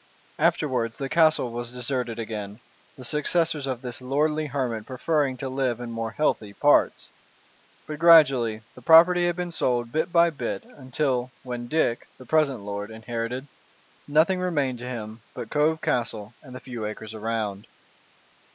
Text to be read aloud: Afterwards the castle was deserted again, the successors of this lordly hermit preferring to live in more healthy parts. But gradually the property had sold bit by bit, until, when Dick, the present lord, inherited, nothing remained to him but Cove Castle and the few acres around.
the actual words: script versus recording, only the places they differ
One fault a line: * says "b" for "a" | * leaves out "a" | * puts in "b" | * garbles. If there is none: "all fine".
* puts in "been"